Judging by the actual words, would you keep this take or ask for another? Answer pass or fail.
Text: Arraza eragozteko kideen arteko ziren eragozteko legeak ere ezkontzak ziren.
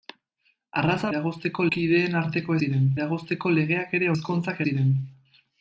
pass